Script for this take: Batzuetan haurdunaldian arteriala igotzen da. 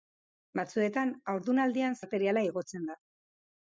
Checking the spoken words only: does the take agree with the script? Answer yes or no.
yes